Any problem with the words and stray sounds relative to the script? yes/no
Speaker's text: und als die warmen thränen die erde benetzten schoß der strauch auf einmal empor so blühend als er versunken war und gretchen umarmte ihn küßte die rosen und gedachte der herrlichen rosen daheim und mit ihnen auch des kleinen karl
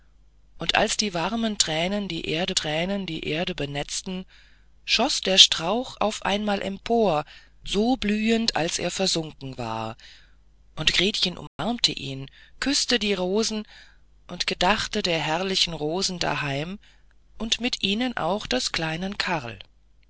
yes